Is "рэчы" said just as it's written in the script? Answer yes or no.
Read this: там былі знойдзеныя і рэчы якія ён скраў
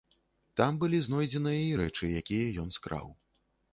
yes